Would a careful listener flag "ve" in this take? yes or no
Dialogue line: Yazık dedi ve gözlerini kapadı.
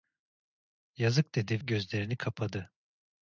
yes